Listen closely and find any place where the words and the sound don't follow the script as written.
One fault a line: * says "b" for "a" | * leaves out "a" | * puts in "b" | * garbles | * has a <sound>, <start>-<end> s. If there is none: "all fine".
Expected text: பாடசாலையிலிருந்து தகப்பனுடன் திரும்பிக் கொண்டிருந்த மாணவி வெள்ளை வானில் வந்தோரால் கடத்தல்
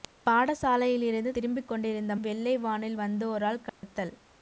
* leaves out "தகப்பனுடன்"
* leaves out "மாணவி"
* has a dropout, 3.7-3.8 s